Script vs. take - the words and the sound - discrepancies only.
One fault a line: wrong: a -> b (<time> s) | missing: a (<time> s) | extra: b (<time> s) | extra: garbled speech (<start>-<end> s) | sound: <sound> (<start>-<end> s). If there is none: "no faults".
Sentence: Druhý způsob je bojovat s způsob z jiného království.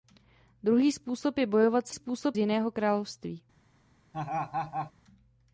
sound: laugh (4.1-4.9 s)